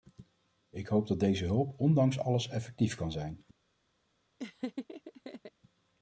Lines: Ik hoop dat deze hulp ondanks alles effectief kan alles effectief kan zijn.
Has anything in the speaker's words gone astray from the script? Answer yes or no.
yes